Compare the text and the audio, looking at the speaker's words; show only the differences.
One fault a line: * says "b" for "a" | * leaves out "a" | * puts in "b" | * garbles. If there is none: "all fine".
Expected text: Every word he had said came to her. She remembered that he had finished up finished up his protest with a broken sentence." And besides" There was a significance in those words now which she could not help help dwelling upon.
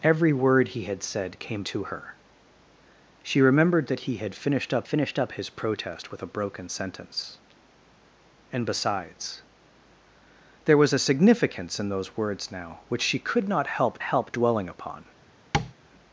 all fine